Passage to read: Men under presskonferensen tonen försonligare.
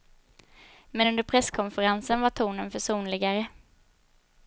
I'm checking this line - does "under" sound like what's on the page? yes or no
yes